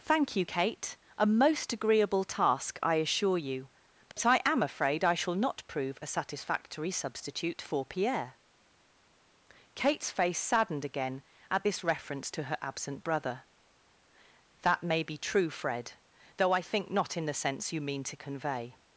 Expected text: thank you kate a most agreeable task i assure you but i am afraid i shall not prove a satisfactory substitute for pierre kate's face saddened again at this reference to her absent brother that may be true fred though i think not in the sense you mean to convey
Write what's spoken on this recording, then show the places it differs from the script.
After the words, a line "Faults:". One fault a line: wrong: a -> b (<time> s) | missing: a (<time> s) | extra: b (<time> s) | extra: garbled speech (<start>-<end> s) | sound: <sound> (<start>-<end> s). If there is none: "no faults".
thank you kate a most agreeable task i assure you but i am afraid i shall not prove a satisfactory substitute for pierre kate's face saddened again at this reference to her absent brother that may be true fred though i think not in the sense you mean to convey
Faults:
sound: dropout (4.1-4.2 s)